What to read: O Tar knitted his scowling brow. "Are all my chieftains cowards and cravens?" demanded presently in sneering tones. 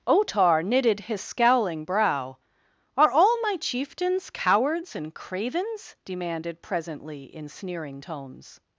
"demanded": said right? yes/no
yes